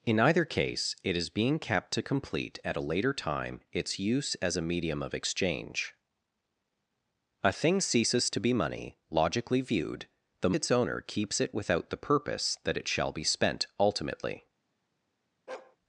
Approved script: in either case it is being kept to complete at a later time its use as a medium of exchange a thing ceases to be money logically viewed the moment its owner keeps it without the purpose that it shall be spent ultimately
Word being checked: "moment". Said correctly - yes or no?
no